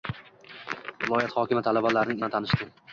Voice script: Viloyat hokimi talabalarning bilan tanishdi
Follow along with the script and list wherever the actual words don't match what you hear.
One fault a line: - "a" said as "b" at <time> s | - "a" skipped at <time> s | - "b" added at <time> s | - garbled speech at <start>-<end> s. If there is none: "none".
none